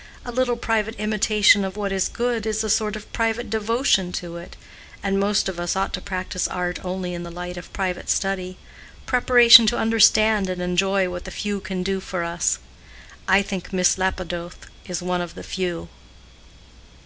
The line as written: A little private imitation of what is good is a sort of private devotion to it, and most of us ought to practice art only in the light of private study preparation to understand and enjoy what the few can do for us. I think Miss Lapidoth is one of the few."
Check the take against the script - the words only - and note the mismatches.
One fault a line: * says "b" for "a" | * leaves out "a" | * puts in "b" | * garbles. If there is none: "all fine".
all fine